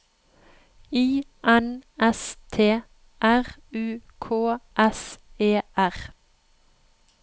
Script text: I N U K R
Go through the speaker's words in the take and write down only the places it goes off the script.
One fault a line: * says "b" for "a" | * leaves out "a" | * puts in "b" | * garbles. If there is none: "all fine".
* puts in "S T R"
* puts in "S E"